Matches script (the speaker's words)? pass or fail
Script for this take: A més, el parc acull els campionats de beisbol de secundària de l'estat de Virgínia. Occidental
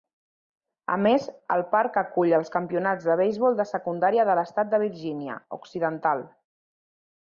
pass